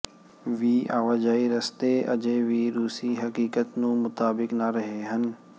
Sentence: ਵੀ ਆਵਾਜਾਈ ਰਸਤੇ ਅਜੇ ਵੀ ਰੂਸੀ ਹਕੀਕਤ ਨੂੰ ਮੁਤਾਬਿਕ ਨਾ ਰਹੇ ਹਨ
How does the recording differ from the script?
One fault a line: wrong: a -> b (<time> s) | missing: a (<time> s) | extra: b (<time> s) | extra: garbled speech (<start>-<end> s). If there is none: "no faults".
no faults